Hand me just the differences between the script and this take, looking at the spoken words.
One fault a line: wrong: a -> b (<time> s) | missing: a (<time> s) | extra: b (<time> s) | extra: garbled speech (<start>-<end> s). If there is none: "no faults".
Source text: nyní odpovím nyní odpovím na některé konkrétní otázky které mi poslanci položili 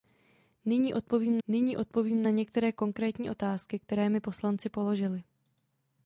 no faults